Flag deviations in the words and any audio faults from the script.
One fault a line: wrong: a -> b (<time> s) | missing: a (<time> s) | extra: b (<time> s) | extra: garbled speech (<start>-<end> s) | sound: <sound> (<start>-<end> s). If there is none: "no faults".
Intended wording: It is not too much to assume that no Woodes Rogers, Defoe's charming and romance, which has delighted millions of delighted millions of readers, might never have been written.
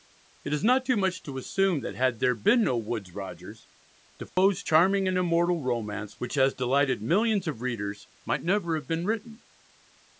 extra: had there been (2.0 s)
sound: dropout (4.3-4.4 s)
extra: immortal (5.2 s)
missing: delighted millions of (7.6 s)